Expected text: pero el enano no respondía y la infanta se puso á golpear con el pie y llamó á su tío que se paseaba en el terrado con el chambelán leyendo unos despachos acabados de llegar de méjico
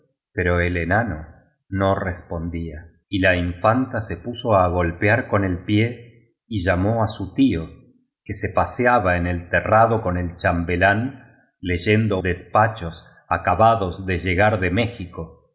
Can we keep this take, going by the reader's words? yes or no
no